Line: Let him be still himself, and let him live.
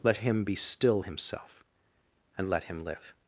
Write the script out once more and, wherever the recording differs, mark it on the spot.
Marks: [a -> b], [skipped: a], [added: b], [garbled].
Let him be still himself, and let him live.